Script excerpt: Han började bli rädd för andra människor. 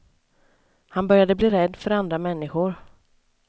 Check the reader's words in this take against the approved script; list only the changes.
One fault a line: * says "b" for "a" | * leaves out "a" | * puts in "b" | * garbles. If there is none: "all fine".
all fine